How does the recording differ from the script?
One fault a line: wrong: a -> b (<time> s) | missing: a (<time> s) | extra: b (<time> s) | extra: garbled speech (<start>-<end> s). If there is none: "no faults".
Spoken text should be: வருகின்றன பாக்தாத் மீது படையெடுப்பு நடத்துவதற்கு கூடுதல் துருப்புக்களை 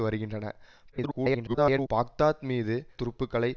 extra: garbled speech (0.9-1.9 s)
missing: படையெடுப்பு நடத்துவதற்கு கூடுதல் (2.7 s)